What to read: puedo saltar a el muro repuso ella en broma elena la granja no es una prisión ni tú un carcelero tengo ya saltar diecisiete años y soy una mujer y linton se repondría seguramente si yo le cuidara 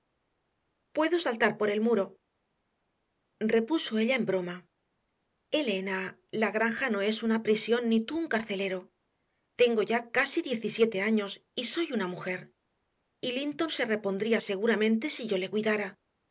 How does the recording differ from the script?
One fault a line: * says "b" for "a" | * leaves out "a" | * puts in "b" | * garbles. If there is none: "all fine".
* says "por" for "a"
* says "casi" for "saltar"